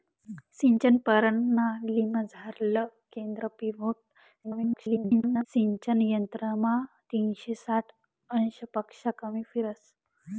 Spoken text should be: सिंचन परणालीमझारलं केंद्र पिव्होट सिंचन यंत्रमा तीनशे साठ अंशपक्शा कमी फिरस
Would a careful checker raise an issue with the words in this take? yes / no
yes